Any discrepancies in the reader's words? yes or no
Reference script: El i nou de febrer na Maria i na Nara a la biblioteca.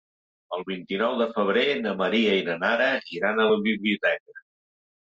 yes